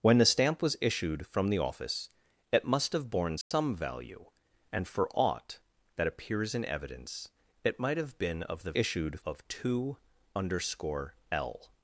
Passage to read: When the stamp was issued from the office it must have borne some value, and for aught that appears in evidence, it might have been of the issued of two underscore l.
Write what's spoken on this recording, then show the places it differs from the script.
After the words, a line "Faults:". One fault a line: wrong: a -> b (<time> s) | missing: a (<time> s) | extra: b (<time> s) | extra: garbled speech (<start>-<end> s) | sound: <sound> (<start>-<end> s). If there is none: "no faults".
When the stamp was issued from the office it must have borne some value, and for aught that appears in evidence, it might have been of the issued of two underscore l.
Faults:
sound: dropout (3.4-3.5 s)